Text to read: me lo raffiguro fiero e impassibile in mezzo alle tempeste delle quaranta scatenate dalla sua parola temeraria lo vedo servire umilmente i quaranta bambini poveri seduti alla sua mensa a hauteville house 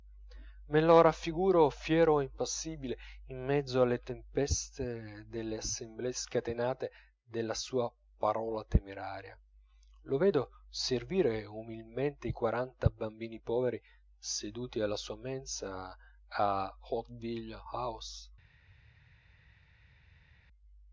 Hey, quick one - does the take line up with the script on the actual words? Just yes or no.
no